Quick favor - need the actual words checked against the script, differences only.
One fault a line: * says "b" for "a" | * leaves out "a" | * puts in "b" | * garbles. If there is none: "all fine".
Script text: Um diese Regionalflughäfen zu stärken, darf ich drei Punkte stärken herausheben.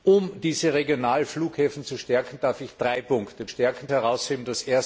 all fine